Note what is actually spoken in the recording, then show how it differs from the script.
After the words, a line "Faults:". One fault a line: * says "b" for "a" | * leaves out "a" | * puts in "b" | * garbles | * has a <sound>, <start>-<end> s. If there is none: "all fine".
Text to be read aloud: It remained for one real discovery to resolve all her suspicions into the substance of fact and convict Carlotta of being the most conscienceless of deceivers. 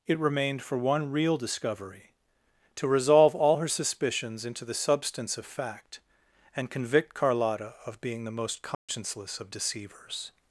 It remained for one real discovery to resolve all her suspicions into the substance of fact and convict Carlotta of being the most conscienceless of deceivers.
Faults:
* has a dropout, 8.7-8.9 s